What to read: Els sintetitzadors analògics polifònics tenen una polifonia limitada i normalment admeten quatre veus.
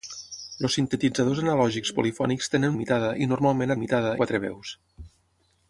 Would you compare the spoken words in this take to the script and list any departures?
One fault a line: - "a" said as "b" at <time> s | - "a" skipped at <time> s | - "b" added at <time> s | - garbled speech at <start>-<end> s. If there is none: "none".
- "una polifonia" skipped at 2.8 s
- "admeten" said as "limitada" at 3.8 s